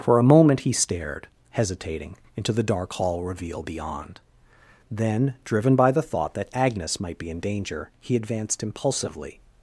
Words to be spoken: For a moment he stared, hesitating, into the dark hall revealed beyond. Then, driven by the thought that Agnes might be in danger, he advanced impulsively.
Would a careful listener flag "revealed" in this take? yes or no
yes